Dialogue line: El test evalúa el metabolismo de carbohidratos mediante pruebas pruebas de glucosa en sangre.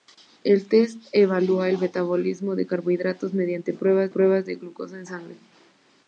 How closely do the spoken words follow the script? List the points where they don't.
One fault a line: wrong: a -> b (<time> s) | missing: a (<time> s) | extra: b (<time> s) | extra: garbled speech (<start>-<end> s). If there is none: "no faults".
no faults